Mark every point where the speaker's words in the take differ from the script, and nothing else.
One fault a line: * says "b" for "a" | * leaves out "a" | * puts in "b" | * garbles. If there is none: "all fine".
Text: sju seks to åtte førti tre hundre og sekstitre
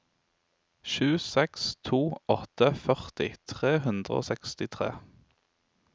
all fine